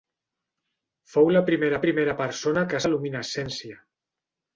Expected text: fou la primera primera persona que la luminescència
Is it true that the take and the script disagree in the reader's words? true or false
false